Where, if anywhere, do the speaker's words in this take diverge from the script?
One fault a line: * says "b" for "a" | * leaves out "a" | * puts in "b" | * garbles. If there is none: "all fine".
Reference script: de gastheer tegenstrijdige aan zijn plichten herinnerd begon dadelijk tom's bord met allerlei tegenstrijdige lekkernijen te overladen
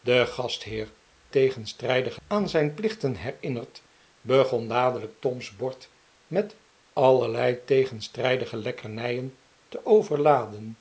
all fine